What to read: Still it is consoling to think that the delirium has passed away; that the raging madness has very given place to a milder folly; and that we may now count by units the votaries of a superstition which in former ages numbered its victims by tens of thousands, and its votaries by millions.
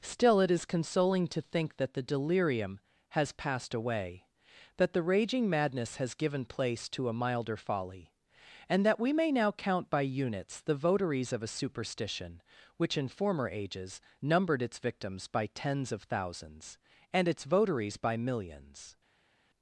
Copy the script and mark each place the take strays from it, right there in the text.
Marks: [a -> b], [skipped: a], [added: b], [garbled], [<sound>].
Still it is consoling to think that the delirium has passed away; that the raging madness has [skipped: very] given place to a milder folly; and that we may now count by units the votaries of a superstition which in former ages numbered its victims by tens of thousands, and its votaries by millions.